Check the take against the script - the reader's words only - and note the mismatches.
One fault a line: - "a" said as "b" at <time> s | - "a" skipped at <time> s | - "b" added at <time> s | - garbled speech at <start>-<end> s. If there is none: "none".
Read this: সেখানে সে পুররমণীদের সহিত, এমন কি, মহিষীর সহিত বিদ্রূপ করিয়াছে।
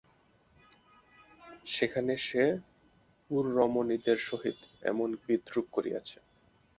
- "কি মহিষীর সহিত" skipped at 5.1 s